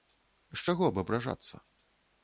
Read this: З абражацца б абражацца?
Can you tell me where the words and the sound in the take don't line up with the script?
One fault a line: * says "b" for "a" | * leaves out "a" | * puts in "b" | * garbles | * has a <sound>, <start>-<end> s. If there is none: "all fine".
* says "чаго" for "абражацца"